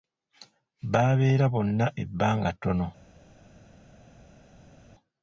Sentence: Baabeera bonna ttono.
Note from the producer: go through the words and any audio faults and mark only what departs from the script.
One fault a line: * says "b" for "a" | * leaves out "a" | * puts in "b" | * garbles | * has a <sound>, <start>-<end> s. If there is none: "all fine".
* puts in "ebbanga"